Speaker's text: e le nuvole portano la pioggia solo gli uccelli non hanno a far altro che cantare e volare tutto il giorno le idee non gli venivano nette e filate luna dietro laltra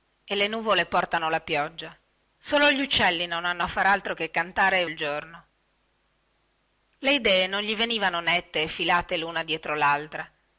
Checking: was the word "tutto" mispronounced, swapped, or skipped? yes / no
yes